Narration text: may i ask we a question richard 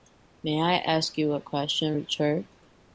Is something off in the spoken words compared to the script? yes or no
yes